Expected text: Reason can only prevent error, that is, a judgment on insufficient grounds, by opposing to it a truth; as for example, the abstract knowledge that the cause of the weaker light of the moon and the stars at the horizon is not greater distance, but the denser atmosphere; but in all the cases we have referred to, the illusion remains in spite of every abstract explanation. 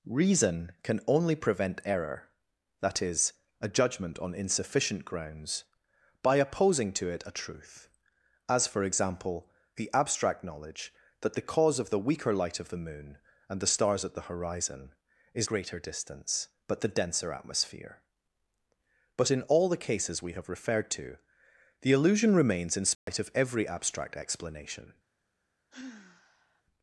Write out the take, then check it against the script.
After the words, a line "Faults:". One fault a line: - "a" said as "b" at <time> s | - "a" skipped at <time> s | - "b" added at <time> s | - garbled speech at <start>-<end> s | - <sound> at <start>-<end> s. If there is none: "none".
Reason can only prevent error, that is, a judgment on insufficient grounds, by opposing to it a truth; as for example, the abstract knowledge that the cause of the weaker light of the moon and the stars at the horizon is greater distance, but the denser atmosphere; but in all the cases we have referred to, the illusion remains in spite of every abstract explanation.
Faults:
- "not" skipped at 15.5 s
- dropout at 22.9-23.1 s
- sigh at 25.7-26.6 s